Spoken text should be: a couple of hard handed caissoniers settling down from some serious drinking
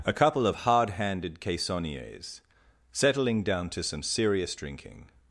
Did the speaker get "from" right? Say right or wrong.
wrong